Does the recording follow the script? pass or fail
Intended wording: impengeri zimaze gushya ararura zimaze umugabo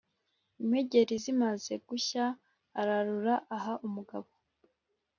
fail